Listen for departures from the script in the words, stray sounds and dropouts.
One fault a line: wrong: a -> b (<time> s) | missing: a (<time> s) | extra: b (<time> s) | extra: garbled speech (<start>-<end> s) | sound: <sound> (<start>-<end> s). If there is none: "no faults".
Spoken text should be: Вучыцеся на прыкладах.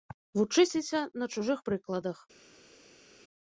extra: чужых (1.4 s)